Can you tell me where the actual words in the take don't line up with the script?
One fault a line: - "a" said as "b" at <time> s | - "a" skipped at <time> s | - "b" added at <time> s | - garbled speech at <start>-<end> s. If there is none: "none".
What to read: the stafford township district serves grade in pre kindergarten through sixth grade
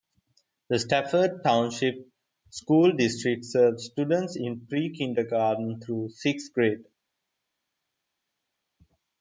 - "school" added at 2.5 s
- "grade" said as "students" at 3.9 s